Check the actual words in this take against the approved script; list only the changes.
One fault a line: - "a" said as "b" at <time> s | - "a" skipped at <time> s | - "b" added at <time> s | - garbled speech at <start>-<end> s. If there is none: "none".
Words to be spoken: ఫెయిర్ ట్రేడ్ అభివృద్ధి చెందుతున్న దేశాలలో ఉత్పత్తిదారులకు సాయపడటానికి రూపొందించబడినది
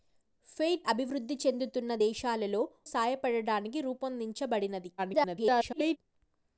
- "ట్రేడ్" skipped at 0.8 s
- "ఉత్పత్తిదారులకు" skipped at 2.6 s
- garbled speech at 5.0-6.0 s